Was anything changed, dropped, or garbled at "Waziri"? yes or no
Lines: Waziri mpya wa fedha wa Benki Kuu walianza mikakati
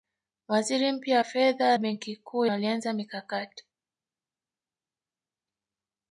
no